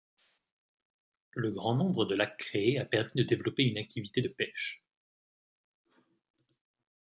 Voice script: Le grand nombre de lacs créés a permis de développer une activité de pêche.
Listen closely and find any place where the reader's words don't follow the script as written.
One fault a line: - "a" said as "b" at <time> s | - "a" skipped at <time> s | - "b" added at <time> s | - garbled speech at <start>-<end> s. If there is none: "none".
none